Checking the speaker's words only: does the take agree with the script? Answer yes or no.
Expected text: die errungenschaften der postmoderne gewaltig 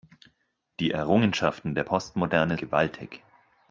yes